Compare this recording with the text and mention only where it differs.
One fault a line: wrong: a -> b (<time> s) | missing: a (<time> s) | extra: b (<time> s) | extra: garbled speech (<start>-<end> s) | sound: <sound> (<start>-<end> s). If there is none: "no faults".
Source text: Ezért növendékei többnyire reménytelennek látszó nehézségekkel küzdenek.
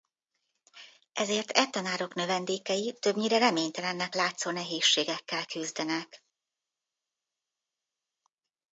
extra: e tanárok (1.5 s)